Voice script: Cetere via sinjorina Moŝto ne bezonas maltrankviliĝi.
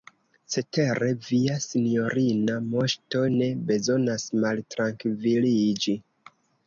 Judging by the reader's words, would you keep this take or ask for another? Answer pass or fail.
pass